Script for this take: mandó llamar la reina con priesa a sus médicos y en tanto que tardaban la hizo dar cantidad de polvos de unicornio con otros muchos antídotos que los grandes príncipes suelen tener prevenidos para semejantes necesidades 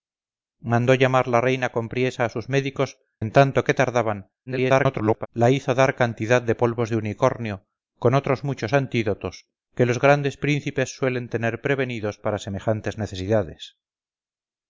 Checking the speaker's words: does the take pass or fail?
fail